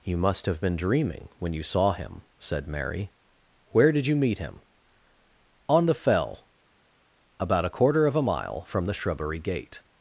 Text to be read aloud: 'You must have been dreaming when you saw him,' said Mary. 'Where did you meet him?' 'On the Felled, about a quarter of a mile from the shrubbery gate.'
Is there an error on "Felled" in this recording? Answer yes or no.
yes